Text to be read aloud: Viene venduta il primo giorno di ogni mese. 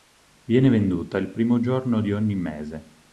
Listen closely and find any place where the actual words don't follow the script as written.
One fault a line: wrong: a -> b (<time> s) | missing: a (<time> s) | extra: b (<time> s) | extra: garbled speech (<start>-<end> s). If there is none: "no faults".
no faults